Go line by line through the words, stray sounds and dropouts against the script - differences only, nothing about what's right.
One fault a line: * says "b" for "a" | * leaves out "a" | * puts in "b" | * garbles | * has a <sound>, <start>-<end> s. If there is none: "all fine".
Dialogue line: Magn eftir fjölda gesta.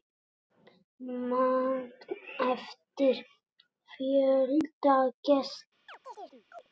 * has a chirp, 5.9-6.7 s